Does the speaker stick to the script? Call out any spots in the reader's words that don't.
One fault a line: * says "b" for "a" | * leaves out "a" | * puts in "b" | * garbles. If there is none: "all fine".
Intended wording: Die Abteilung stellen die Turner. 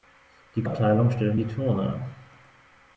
all fine